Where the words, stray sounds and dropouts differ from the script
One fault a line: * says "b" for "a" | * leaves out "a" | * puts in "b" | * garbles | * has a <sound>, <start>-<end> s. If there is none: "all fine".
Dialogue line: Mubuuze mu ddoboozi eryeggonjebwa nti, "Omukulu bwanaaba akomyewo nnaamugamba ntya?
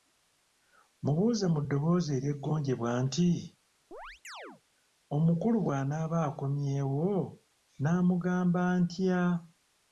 * has a chirp, 3.9-4.6 s